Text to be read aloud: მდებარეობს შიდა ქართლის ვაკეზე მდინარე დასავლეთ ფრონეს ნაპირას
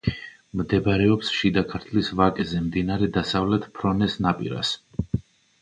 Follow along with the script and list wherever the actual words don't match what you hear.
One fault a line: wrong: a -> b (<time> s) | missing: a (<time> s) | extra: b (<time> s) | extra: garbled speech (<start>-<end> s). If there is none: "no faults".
no faults